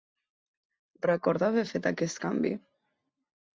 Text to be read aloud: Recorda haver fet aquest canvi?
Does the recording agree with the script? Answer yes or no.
yes